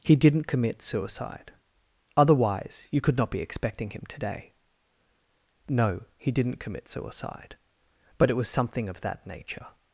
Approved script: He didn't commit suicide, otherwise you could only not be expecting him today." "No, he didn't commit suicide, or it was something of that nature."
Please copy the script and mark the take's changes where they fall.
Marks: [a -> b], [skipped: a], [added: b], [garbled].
He didn't commit suicide, otherwise you could [skipped: only] not be expecting him today." "No, he didn't commit suicide, [or -> but] it was something of that nature."